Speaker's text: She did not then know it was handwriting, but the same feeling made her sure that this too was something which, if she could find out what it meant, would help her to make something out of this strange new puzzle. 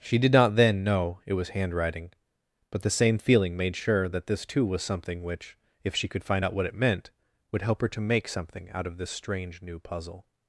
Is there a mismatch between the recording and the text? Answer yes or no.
yes